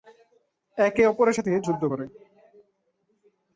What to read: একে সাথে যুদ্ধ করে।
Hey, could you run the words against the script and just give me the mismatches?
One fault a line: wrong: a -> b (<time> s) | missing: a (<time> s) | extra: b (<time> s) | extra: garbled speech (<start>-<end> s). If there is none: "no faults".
extra: অপরের (1.1 s)